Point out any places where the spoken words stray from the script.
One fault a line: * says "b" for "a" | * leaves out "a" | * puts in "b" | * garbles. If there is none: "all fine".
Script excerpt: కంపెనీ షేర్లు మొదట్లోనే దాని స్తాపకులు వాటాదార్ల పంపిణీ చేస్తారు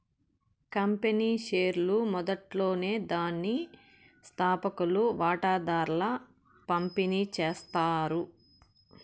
all fine